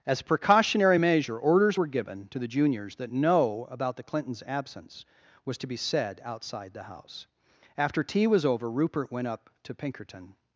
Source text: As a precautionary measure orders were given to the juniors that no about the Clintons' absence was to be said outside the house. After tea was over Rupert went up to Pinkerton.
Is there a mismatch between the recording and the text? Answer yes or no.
no